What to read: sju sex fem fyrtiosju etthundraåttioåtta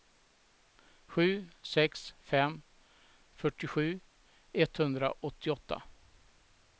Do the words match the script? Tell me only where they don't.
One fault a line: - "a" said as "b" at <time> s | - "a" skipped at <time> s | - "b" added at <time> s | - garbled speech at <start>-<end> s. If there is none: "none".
none